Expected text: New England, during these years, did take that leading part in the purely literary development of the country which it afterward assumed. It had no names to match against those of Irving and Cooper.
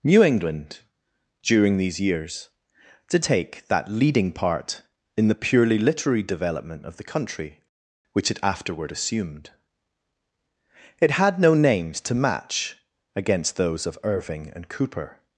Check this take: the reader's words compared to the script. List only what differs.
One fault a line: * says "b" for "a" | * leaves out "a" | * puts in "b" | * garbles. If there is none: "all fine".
all fine